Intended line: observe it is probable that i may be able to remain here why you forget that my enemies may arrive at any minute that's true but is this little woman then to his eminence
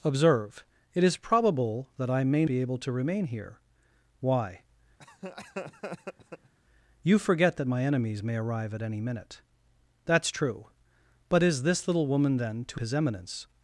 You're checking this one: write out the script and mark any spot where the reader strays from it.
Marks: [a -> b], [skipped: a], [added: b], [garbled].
observe it is probable that i may be able to remain here why you forget that my enemies may arrive at any minute that's true but is this little woman then to his eminence